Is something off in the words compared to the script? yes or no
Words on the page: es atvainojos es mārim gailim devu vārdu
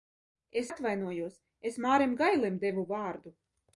no